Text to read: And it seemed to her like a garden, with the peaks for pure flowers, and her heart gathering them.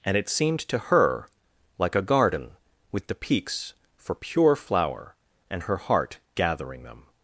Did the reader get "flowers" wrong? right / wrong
wrong